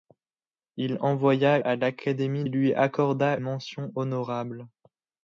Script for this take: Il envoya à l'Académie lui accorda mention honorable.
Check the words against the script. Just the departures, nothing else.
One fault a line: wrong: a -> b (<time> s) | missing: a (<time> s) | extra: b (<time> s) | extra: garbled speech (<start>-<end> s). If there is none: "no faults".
no faults